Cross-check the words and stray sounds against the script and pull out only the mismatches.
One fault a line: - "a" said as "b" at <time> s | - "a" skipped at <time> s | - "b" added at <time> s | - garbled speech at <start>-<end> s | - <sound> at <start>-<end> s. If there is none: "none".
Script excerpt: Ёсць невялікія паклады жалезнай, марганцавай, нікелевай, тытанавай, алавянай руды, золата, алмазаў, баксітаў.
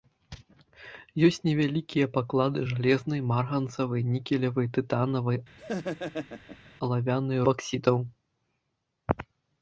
- laugh at 5.6-6.7 s
- "руды золата алмазаў" skipped at 7.4 s